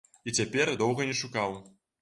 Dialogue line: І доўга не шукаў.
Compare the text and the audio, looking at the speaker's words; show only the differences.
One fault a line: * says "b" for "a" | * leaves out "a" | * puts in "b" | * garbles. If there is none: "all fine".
* puts in "цяпер"